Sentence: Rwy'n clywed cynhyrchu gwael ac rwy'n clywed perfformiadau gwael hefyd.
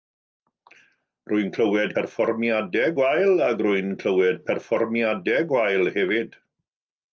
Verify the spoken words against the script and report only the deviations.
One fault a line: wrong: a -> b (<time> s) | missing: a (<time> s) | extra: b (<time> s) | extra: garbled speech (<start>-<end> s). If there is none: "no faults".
wrong: cynhyrchu -> perfformiadau (1.9 s)